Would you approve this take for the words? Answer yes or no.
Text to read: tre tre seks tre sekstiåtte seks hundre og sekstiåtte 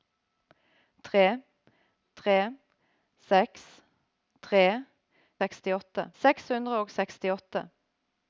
yes